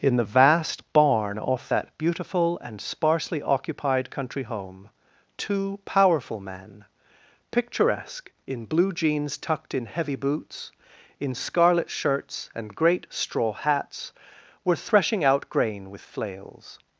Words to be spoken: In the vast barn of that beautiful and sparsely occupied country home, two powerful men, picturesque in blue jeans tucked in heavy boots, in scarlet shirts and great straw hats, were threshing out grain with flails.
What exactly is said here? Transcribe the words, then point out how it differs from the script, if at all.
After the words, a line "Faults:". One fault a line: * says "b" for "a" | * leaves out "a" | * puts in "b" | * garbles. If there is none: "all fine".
In the vast barn off that beautiful and sparsely occupied country home, two powerful men, picturesque in blue jeans tucked in heavy boots, in scarlet shirts and great straw hats, were threshing out grain with flails.
Faults:
* says "off" for "of"